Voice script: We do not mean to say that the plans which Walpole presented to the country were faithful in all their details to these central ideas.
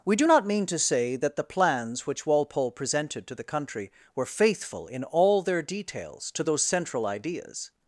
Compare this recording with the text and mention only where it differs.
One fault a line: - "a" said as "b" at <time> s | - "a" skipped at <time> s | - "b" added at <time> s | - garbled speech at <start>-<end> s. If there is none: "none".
- "these" said as "those" at 6.4 s